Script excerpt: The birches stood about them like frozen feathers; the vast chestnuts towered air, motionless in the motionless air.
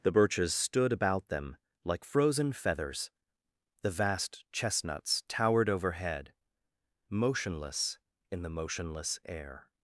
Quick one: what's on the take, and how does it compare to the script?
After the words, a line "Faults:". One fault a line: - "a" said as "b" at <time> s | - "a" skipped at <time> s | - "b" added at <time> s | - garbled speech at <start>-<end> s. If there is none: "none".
The birches stood about them like frozen feathers; the vast chestnuts towered overhead, motionless in the motionless air.
Faults:
- "air" said as "overhead" at 5.7 s